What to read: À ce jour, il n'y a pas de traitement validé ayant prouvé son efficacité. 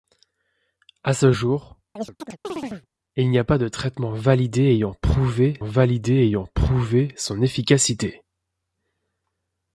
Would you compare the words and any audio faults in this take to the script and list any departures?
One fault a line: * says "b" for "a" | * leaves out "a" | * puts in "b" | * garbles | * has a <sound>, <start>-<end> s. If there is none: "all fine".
* has a chirp, 2.0-2.9 s
* puts in "validé ayant prouvé"